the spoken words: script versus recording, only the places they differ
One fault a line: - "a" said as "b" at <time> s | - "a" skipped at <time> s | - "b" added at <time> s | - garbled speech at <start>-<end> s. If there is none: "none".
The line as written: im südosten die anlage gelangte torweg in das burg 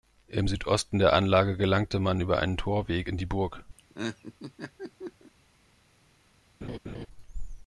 - "die" said as "der" at 1.0 s
- "man über einen" added at 2.0 s
- "das" said as "die" at 3.2 s